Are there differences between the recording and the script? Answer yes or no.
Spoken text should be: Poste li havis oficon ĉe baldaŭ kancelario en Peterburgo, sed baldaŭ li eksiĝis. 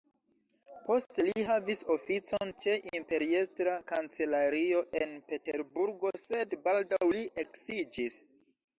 yes